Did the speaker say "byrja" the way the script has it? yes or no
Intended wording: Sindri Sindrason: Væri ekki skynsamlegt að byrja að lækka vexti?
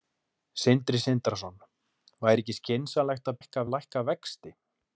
no